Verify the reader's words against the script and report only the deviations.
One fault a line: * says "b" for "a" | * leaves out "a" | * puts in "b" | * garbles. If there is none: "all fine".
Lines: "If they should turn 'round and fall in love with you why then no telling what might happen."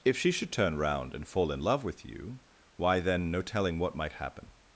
* says "she" for "they"